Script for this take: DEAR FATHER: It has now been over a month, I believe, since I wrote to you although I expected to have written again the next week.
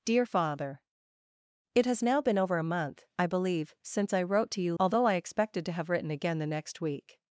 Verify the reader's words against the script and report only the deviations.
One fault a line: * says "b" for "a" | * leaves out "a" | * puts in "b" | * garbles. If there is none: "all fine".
all fine